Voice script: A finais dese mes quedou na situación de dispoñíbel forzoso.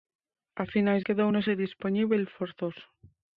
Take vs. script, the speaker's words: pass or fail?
fail